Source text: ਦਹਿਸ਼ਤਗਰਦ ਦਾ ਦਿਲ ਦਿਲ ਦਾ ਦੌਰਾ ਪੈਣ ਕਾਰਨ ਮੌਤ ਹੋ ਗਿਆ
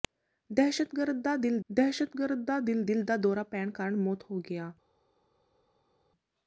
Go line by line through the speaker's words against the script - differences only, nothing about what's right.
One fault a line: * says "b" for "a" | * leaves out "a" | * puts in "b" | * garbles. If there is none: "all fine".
* puts in "ਦਹਿਸ਼ਤਗਰਦ ਦਾ ਦਿਲ"